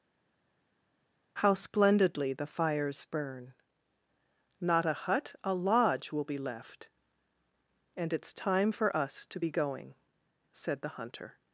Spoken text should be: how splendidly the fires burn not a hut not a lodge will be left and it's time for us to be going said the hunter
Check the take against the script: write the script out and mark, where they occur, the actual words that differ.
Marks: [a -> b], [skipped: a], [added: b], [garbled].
how splendidly the fires burn not a hut [skipped: not] a lodge will be left and it's time for us to be going said the hunter